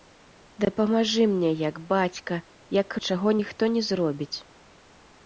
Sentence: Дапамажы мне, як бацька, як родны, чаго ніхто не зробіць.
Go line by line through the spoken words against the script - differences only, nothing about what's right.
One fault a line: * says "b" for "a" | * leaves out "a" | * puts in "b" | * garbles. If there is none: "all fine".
* leaves out "родны"